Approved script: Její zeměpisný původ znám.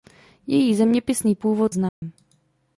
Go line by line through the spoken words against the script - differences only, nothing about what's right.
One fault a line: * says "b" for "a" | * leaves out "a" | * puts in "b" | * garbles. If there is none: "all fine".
all fine